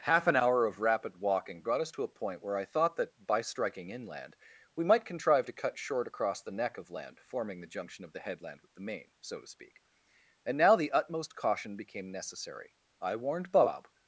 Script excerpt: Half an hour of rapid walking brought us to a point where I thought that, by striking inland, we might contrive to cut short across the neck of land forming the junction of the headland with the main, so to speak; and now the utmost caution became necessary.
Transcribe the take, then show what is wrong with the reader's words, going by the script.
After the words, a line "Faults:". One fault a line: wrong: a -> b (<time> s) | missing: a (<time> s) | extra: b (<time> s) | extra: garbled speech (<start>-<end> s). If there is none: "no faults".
Half an hour of rapid walking brought us to a point where I thought that, by striking inland, we might contrive to cut short across the neck of land forming the junction of the headland with the main, so to speak; and now the utmost caution became necessary. I warned Bob
Faults:
extra: I warned Bob (13.0 s)